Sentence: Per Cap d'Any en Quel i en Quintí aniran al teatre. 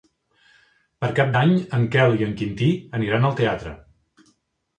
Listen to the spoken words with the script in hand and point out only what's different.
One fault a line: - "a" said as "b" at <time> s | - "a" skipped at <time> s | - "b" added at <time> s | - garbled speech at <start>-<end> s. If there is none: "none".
none